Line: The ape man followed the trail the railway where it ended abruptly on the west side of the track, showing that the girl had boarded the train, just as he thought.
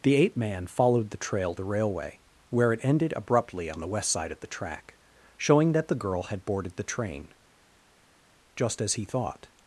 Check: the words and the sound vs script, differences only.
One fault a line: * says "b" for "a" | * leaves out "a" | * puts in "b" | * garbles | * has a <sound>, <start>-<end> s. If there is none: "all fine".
all fine